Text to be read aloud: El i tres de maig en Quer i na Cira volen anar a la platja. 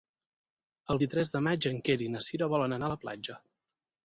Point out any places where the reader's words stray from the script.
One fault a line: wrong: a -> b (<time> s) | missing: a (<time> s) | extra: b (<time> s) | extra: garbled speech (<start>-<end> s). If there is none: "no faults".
no faults